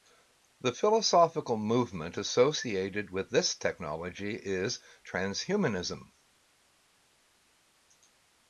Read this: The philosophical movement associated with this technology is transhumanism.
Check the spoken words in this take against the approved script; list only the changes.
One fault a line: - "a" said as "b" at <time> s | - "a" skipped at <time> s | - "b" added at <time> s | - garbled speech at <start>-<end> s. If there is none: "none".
none